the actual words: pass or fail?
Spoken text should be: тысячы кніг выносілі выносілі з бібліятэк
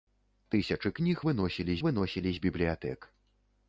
pass